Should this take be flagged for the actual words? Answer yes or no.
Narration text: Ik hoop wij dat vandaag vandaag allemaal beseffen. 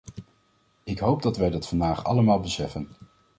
yes